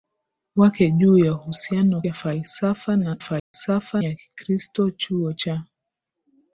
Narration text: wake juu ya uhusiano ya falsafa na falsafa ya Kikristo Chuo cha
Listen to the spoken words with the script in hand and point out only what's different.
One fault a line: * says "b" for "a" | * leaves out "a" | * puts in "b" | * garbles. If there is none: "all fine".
all fine